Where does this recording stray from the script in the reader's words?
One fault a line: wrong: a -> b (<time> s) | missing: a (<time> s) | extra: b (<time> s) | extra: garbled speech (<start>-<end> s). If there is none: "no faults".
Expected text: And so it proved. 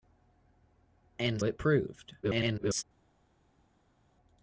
missing: so (1.4 s)
extra: garbled speech (2.2-2.8 s)